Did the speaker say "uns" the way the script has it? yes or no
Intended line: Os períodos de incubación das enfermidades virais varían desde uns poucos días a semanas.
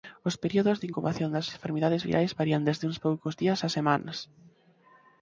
yes